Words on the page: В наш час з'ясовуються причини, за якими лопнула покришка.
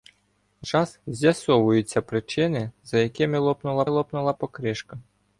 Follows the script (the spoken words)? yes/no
no